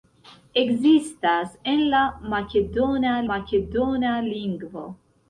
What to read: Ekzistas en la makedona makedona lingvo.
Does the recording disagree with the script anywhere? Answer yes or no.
no